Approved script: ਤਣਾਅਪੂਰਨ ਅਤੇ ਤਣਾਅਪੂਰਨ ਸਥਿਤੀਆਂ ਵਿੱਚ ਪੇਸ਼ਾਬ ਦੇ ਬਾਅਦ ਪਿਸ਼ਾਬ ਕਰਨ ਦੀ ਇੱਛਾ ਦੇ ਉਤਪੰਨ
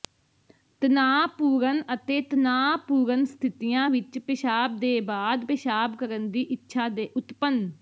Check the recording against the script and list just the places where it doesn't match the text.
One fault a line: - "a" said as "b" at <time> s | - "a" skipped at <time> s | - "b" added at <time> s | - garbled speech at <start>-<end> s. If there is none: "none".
none